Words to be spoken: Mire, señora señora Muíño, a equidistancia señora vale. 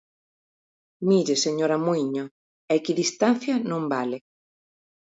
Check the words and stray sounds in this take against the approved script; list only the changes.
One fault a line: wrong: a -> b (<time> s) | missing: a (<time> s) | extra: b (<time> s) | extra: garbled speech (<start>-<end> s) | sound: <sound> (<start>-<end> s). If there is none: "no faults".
missing: señora (1.8 s)
wrong: señora -> non (3.7 s)